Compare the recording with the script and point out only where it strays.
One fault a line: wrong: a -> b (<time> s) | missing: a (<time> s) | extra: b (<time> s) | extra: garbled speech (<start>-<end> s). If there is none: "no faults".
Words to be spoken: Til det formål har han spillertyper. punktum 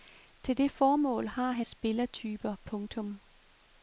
no faults